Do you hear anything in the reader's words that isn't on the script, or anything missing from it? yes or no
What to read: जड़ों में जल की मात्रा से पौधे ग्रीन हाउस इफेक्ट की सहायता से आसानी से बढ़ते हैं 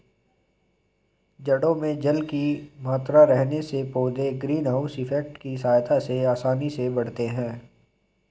yes